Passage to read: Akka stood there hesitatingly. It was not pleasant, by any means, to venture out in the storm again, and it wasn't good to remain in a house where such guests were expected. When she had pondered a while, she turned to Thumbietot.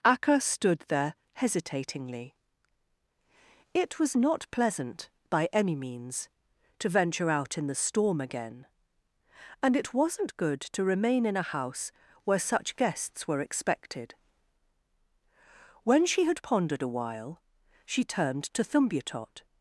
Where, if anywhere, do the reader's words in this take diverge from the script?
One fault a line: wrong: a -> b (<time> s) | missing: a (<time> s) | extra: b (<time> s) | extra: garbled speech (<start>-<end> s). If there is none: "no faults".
no faults